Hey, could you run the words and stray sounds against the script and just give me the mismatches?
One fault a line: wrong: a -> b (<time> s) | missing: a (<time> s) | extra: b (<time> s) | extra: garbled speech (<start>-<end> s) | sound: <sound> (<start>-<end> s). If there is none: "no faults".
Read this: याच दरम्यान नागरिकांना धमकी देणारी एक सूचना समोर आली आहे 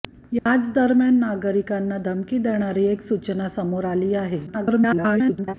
sound: dropout (0.4-0.5 s)
extra: garbled speech (4.5-5.5 s)